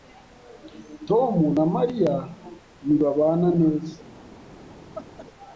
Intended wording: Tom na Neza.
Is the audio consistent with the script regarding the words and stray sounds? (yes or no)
no